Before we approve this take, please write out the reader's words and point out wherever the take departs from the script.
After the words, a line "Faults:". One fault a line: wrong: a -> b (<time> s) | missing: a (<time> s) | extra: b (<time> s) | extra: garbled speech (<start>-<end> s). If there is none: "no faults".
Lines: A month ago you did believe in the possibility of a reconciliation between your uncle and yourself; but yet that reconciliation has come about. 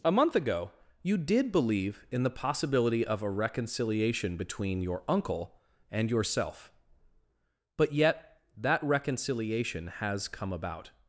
A month ago you did believe in the possibility of a reconciliation between your uncle and yourself; but yet that reconciliation has come about.
Faults:
no faults